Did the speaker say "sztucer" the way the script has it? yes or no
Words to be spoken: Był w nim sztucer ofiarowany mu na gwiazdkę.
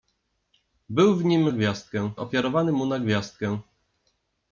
no